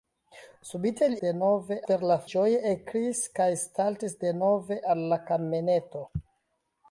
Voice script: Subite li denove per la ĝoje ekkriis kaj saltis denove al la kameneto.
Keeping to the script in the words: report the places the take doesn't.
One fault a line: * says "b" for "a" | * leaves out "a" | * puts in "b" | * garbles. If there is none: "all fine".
all fine